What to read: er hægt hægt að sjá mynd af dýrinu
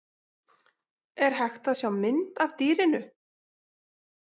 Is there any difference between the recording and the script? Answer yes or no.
yes